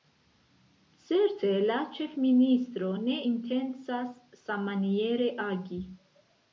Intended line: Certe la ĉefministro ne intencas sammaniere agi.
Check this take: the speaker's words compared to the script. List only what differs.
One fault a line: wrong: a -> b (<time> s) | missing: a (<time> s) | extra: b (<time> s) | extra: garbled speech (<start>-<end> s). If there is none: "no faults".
no faults